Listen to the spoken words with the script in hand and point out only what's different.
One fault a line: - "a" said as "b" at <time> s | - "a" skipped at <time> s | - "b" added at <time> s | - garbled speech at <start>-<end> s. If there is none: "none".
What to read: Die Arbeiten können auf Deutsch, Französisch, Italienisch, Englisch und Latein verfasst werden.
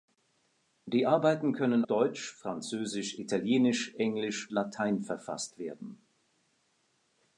- "auf" skipped at 1.9 s
- "und" skipped at 4.5 s